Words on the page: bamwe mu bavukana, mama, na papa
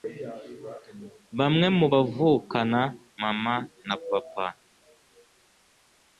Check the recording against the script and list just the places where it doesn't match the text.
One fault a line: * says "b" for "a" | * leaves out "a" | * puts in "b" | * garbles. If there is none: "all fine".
all fine